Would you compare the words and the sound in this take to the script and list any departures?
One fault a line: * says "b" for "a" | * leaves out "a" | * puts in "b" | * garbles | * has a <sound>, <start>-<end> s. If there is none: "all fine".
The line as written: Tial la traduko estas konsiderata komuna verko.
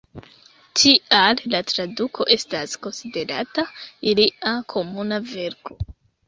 * puts in "ilia"